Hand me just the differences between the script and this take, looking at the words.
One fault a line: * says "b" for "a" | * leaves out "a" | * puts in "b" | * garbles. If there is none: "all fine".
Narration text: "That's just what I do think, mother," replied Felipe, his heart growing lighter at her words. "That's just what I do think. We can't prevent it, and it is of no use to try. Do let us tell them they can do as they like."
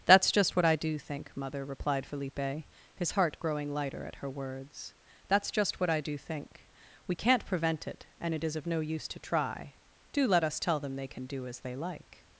all fine